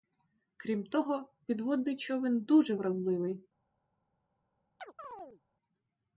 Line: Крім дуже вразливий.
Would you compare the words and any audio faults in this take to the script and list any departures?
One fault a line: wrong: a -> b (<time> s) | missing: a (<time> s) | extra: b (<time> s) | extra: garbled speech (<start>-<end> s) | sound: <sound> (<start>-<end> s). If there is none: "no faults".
extra: того підводний човен (0.8 s)
sound: chirp (4.8-5.4 s)